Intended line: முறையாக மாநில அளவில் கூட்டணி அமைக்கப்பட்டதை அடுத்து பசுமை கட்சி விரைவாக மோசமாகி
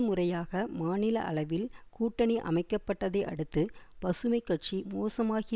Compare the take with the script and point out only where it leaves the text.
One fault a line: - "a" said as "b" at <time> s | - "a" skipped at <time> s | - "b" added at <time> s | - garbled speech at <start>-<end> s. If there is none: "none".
- "விரைவாக" skipped at 4.8 s